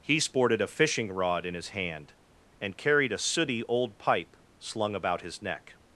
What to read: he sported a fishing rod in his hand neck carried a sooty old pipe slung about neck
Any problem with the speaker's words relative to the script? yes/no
yes